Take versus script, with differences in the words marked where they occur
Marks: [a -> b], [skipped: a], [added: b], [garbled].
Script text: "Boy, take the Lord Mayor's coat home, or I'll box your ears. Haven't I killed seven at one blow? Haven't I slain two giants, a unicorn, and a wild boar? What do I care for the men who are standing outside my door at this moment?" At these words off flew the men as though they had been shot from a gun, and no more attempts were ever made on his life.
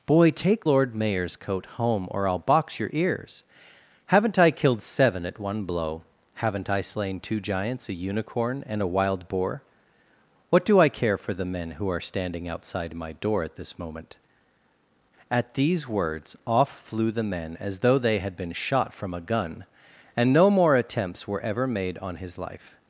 "Boy, take [skipped: the] Lord Mayor's coat home, or I'll box your ears. Haven't I killed seven at one blow? Haven't I slain two giants, a unicorn, and a wild boar? What do I care for the men who are standing outside my door at this moment?" At these words off flew the men as though they had been shot from a gun, and no more attempts were ever made on his life.